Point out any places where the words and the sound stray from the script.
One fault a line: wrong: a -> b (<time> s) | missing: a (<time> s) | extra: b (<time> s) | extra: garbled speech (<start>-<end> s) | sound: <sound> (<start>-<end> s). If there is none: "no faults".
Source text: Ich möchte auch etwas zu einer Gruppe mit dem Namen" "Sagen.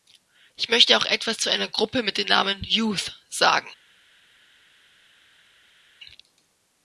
extra: Youth (2.6 s)